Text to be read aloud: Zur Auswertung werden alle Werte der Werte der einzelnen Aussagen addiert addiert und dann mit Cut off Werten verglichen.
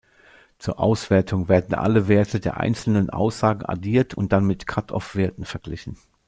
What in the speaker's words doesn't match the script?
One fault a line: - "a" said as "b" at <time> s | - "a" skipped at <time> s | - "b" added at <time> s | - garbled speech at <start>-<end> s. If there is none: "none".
- "Werte der" skipped at 2.6 s
- "addiert" skipped at 4.2 s